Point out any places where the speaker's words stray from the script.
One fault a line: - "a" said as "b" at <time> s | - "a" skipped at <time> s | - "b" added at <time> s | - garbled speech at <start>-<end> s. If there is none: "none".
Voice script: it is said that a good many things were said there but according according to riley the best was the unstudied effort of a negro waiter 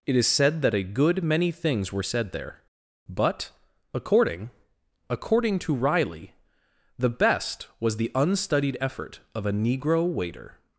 none